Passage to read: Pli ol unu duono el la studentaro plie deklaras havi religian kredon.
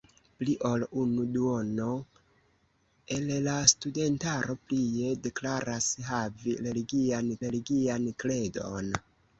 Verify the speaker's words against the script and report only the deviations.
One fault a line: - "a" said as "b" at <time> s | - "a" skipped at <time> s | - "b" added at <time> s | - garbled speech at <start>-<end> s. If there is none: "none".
- "religian" added at 7.5 s